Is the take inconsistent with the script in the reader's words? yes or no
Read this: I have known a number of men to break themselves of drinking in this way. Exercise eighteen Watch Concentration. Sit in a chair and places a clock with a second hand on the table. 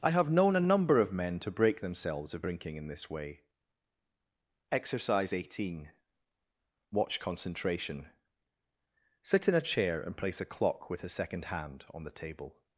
yes